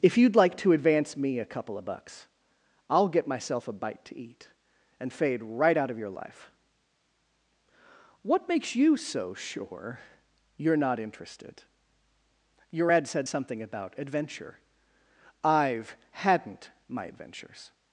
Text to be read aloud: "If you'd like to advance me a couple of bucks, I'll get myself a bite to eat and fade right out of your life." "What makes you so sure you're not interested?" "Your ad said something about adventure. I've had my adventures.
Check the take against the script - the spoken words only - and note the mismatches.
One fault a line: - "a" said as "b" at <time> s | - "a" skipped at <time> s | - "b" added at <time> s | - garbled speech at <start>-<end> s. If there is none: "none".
- "had" said as "hadn't" at 16.1 s